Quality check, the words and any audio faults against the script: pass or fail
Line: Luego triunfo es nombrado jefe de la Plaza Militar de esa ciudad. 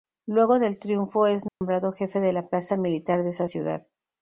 fail